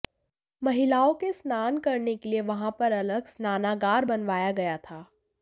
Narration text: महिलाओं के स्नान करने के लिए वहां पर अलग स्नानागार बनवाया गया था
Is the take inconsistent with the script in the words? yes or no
no